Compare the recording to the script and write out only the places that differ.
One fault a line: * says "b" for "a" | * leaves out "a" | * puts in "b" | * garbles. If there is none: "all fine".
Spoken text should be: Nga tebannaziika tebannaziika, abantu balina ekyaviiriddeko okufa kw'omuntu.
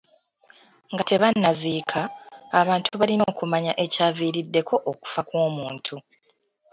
* leaves out "tebannaziika"
* puts in "okumanya"